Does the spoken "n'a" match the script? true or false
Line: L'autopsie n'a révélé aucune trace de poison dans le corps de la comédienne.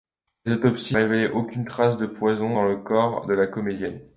false